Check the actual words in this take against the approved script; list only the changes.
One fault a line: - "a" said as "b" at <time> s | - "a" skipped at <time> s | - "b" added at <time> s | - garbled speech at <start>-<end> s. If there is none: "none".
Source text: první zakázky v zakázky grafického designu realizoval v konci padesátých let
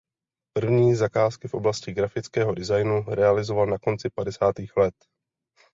- "zakázky" said as "oblasti" at 1.5 s
- "v" said as "na" at 3.7 s